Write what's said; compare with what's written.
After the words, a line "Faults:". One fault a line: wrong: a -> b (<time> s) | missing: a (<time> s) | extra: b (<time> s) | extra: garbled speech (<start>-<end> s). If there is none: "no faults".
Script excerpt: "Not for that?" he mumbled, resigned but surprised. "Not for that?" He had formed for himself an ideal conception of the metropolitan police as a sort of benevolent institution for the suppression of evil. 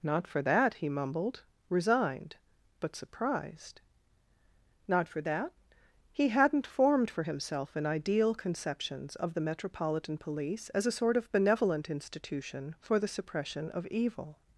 "Not for that?" he mumbled, resigned but surprised. "Not for that?" He hadn't formed for himself an ideal conceptions of the metropolitan police as a sort of benevolent institution for the suppression of evil.
Faults:
wrong: had -> hadn't (6.3 s)
wrong: conception -> conceptions (8.3 s)